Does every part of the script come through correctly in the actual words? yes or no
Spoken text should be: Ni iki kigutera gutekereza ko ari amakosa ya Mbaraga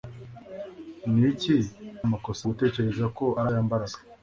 no